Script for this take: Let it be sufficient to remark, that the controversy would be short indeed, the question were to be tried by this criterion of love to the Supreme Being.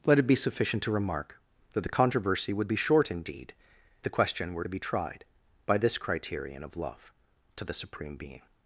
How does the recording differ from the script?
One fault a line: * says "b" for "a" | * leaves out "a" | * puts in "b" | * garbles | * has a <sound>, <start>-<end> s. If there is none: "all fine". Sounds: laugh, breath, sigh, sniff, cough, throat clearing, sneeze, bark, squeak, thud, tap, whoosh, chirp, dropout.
all fine